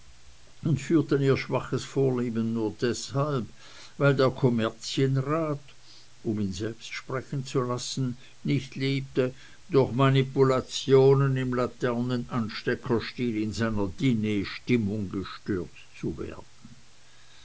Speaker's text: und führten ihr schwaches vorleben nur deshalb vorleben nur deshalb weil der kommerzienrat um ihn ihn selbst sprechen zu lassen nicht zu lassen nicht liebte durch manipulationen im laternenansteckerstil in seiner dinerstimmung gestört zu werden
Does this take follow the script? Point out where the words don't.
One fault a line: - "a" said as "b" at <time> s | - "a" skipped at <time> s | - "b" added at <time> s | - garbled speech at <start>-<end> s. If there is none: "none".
- "vorleben nur deshalb" skipped at 3.5 s
- "ihn" skipped at 6.5 s
- "zu lassen nicht" skipped at 8.8 s